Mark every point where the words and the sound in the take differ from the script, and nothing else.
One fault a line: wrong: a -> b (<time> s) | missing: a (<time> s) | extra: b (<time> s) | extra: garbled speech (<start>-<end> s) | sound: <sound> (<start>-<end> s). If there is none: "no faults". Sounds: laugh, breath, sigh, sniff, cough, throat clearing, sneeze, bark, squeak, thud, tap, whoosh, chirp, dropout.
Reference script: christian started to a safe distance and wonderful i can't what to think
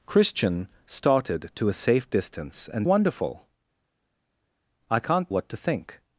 no faults